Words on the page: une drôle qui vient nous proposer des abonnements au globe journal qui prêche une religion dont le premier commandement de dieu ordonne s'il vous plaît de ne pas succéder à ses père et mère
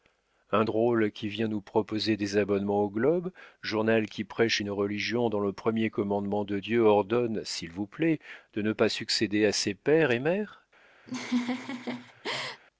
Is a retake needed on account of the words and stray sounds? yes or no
yes